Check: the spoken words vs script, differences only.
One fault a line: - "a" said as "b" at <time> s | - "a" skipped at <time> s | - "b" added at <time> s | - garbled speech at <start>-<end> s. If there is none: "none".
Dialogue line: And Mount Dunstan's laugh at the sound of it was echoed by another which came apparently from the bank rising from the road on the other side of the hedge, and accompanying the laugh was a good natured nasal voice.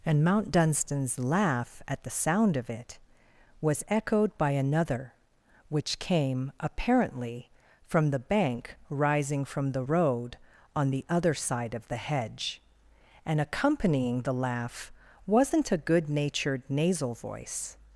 - "was" said as "wasn't" at 15.2 s